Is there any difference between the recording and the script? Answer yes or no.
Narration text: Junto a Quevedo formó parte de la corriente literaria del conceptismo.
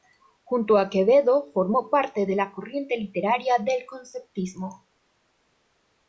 no